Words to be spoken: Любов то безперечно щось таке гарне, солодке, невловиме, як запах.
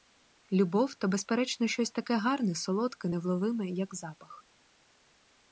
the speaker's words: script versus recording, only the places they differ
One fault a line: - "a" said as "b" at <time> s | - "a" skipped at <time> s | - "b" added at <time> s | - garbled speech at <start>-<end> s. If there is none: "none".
none